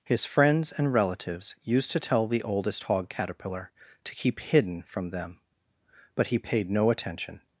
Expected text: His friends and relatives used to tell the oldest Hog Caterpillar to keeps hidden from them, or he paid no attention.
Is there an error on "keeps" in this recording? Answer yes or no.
yes